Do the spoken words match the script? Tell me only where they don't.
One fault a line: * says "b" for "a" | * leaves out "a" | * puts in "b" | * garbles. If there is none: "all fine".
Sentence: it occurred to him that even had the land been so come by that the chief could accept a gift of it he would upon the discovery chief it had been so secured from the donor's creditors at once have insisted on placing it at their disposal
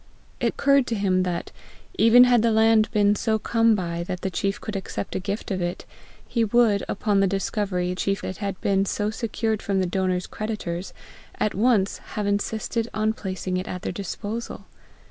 all fine